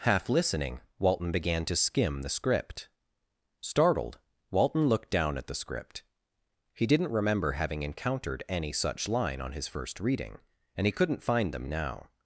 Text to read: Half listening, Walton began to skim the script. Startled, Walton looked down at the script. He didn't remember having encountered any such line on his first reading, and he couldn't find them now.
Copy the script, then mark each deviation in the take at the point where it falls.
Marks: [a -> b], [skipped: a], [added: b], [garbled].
Half listening, Walton began to skim the script. Startled, Walton looked down at the script. He didn't remember having encountered any such line on his first reading, and he couldn't find them now.